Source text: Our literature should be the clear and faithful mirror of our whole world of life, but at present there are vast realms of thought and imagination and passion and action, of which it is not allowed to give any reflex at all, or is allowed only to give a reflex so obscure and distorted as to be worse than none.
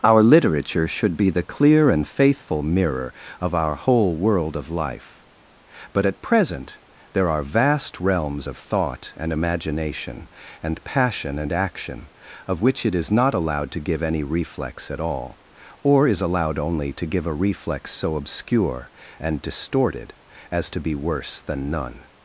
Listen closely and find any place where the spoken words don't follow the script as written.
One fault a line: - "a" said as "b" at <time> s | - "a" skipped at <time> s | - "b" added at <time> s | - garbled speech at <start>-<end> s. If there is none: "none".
none